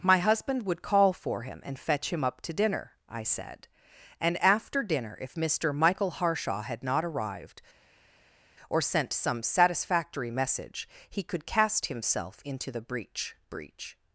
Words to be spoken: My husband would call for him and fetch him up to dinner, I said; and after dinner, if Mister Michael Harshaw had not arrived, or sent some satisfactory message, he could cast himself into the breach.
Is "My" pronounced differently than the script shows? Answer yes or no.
no